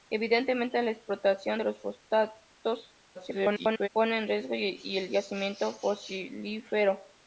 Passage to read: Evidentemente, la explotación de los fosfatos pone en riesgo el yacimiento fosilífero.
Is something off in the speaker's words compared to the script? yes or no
yes